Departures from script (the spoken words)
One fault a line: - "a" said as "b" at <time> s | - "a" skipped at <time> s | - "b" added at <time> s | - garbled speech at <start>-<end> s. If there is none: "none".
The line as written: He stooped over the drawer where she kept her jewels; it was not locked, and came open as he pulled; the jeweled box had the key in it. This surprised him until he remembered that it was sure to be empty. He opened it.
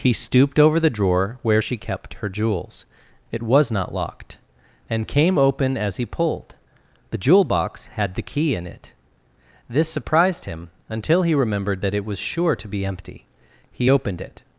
- "jeweled" said as "jewel" at 7.2 s